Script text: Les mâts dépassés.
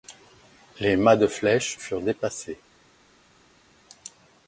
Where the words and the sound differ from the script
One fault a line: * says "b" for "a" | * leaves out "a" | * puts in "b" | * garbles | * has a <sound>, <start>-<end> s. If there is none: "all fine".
* puts in "de flèche furent"